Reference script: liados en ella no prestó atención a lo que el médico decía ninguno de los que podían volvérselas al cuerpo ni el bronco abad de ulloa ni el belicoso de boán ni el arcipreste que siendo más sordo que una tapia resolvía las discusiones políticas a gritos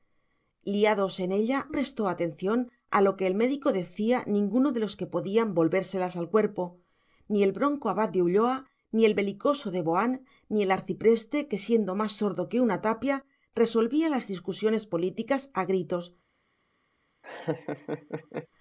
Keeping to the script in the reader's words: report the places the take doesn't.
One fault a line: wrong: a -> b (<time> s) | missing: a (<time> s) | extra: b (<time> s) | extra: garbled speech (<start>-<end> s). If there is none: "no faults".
missing: no (1.7 s)